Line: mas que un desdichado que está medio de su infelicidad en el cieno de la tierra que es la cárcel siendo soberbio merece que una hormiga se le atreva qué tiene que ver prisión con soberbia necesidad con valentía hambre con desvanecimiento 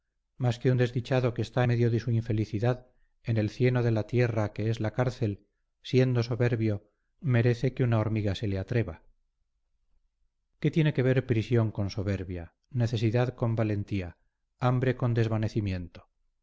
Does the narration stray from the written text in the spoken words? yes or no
no